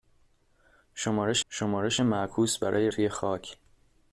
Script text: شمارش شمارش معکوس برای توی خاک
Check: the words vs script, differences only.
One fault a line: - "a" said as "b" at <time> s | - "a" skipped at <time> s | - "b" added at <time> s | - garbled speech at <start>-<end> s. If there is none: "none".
none